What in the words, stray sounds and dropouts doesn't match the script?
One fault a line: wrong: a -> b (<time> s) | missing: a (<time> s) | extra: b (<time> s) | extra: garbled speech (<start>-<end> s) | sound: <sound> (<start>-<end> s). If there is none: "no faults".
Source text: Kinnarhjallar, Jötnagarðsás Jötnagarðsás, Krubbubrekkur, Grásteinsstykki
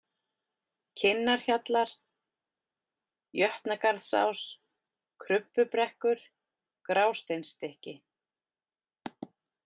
missing: Jötnagarðsás (4.4 s)